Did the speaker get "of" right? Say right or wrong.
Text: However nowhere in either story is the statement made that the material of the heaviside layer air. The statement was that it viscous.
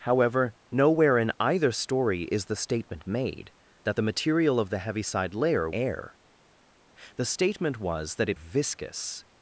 right